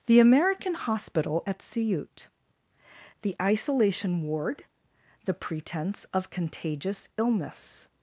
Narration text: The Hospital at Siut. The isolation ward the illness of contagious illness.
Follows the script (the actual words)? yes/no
no